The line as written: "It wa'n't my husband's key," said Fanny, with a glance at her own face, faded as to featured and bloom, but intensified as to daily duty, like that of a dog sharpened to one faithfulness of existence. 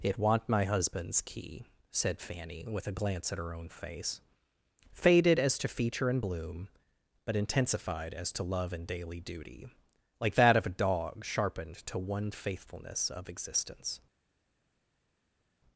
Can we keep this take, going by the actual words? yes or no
no